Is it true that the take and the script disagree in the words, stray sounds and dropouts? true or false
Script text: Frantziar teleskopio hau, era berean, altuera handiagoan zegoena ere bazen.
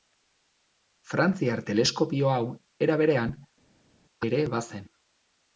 true